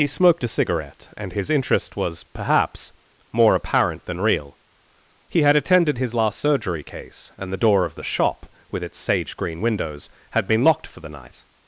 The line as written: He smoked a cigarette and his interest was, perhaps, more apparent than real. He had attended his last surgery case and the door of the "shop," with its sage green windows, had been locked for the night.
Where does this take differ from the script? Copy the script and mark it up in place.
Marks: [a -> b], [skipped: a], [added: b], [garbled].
He smoked a cigarette and his interest was, perhaps, more apparent than real. He had attended his last surgery case and the door of the "shop," with its sage green windows, had been locked for the night.